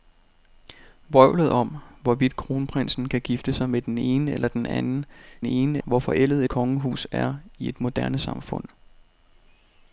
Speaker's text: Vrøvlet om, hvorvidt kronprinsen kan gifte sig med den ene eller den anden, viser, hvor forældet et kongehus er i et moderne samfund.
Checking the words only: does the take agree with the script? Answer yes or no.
no